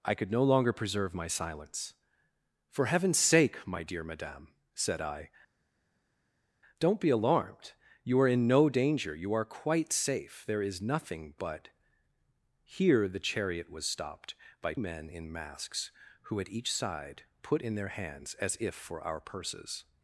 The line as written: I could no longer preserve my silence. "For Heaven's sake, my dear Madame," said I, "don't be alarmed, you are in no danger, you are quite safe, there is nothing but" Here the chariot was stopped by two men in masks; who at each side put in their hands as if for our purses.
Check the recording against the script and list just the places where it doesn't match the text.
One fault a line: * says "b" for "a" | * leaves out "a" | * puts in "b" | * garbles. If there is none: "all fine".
* leaves out "two"